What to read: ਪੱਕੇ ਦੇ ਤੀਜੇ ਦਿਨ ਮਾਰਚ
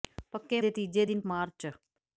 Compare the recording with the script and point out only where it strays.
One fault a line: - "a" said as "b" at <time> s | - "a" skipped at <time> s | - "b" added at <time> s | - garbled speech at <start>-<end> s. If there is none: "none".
none